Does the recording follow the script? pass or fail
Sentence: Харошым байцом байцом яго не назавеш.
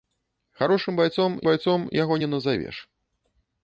pass